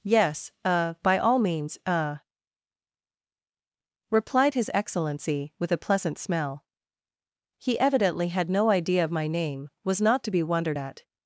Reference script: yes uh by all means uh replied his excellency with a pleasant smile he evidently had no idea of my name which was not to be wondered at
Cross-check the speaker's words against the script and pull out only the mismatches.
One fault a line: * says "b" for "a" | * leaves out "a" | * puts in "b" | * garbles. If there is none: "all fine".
* says "smell" for "smile"
* leaves out "which"